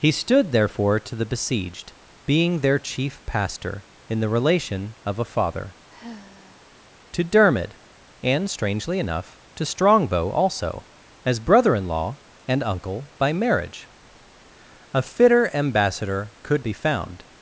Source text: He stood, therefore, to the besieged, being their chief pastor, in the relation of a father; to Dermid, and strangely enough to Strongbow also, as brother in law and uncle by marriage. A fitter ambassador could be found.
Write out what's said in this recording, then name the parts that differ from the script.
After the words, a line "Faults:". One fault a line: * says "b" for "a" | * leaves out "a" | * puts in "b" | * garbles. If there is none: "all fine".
He stood, therefore, to the besieged, being their chief pastor, in the relation of a father; to Dermid, and strangely enough to Strongbow also, as brother in law and uncle by marriage. A fitter ambassador could be found.
Faults:
all fine